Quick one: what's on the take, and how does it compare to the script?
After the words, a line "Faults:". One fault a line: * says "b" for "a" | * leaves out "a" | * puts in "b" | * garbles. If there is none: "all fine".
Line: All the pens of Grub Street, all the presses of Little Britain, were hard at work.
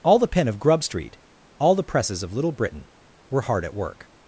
All the pen of Grub Street, all the presses of Little Britain, were hard at work.
Faults:
* says "pen" for "pens"